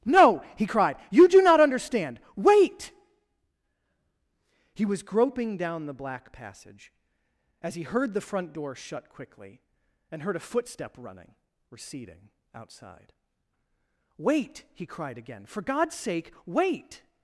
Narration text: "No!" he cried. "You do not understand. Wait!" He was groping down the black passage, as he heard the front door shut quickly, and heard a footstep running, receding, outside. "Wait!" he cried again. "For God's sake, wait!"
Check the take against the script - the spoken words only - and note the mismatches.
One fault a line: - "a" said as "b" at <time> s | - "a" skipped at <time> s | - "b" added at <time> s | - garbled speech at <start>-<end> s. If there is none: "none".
none